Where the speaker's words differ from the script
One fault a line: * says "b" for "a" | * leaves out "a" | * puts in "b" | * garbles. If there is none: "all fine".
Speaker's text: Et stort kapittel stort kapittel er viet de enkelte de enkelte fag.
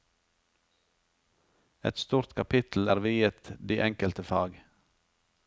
* leaves out "stort kapittel"
* leaves out "de enkelte"